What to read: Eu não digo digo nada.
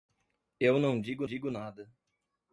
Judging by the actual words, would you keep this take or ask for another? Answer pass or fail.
pass